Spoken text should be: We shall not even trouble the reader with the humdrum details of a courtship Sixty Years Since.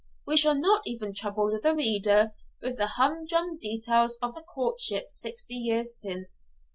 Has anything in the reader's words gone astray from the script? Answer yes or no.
no